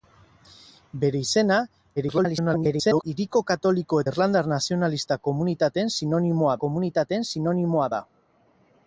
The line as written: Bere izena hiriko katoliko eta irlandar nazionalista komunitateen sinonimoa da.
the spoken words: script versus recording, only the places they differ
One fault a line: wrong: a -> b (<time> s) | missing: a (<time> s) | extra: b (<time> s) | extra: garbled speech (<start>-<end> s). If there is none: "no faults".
extra: garbled speech (2.0-3.0 s)
missing: eta (4.0 s)
extra: komunitateen sinonimoa (6.6 s)